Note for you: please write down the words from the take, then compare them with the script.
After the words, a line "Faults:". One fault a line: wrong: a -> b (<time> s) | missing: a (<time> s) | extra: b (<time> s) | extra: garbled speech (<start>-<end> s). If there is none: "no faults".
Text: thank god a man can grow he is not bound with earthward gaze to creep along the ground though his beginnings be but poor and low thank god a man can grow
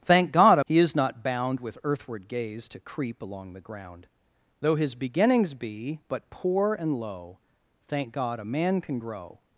thank god a he is not bound with earthward gaze to creep along the ground though his beginnings be but poor and low thank god a man can grow
Faults:
missing: man can grow (0.6 s)